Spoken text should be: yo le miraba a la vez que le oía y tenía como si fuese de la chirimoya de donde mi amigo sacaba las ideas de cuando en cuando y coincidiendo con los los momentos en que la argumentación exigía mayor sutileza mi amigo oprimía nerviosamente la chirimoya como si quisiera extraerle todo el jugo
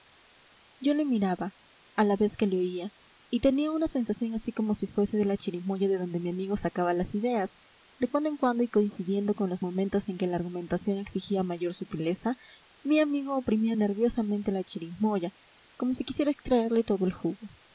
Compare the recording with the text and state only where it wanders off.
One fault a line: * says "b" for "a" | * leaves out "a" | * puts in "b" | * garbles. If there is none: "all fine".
* puts in "una sensación así"
* leaves out "los"